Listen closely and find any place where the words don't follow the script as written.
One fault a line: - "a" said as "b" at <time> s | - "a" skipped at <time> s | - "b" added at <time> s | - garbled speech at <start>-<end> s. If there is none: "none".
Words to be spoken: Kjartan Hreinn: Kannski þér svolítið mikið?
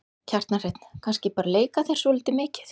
- "bara leika" added at 1.4 s